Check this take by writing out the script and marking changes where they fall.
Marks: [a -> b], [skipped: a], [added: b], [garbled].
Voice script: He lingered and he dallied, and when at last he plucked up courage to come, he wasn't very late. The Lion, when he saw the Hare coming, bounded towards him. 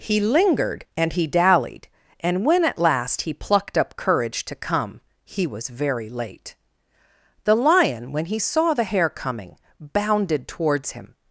He lingered and he dallied, and when at last he plucked up courage to come, he [wasn't -> was] very late. The Lion, when he saw the Hare coming, bounded towards him.